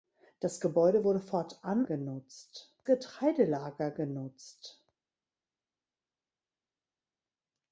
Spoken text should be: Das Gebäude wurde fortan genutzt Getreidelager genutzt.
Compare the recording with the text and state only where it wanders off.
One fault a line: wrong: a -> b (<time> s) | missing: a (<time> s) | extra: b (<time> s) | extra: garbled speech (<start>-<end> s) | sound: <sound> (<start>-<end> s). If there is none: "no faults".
no faults